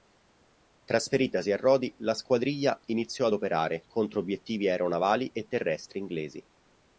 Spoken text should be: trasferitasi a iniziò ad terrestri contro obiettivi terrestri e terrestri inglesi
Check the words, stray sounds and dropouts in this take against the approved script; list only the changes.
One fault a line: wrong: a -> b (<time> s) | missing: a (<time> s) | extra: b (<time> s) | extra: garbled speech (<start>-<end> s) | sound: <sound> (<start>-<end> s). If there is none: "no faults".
extra: rodi la squadriglia (1.6 s)
wrong: terrestri -> operare (3.3 s)
wrong: terrestri -> aeronavali (4.7 s)